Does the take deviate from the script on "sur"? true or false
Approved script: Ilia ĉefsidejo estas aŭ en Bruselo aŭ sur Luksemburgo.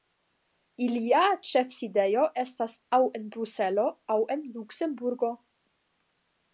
true